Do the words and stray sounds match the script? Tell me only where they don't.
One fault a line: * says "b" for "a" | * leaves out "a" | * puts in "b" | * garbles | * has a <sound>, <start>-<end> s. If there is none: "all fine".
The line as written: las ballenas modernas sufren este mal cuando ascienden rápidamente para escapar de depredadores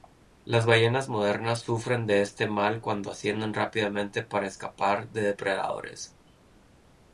* puts in "de"